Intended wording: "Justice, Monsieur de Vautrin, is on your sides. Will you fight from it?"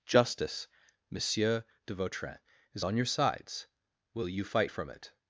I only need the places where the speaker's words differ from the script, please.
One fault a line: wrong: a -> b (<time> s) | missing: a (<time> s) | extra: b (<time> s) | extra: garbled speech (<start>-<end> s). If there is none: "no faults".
no faults